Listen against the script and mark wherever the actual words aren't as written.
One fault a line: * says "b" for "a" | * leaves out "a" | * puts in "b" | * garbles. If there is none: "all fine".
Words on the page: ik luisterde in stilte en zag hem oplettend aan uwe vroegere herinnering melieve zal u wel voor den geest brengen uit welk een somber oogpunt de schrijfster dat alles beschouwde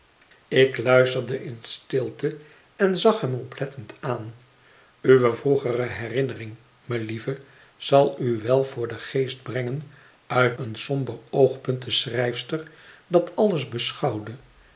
* leaves out "welk"